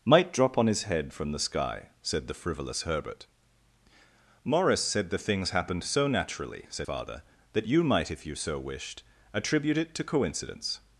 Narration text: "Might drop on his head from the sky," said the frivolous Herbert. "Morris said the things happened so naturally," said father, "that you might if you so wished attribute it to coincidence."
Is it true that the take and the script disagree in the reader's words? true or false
false